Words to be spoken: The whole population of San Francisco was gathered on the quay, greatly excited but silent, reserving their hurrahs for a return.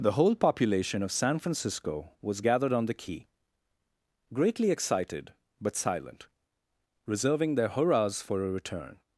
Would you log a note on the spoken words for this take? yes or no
no